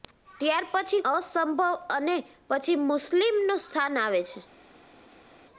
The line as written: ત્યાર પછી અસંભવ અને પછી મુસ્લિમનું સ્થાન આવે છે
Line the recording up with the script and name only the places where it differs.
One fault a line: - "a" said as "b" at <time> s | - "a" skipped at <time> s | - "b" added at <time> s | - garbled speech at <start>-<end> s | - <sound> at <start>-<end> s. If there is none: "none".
none